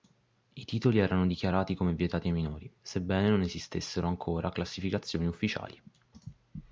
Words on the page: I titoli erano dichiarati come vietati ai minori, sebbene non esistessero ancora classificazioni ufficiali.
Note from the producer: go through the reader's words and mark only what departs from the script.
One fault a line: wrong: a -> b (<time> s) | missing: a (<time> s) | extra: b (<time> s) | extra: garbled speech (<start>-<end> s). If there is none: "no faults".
no faults